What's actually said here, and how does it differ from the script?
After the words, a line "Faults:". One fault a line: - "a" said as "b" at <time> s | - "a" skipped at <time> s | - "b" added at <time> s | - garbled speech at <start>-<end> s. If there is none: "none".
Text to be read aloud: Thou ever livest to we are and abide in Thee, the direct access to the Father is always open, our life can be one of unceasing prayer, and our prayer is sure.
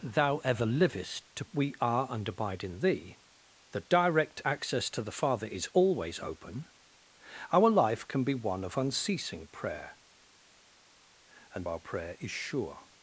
Thou ever livest to we are and abide in Thee, the direct access to the Father is always open, our life can be one of unceasing prayer, and our prayer is sure.
Faults:
none